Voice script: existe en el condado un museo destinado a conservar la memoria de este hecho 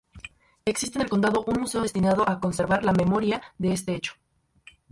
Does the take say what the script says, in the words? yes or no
yes